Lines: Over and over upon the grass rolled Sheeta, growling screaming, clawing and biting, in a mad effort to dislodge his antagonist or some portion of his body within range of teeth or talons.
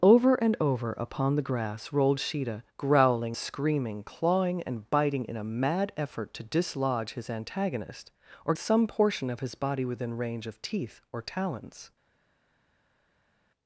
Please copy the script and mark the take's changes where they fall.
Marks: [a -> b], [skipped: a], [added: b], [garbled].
Over and over upon the grass rolled Sheeta, growling screaming, clawing and biting, in a mad effort to dislodge his antagonist or some portion of his body within range of teeth or talons.